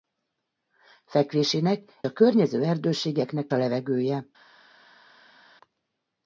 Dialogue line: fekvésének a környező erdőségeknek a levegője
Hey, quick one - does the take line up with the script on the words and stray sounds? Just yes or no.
yes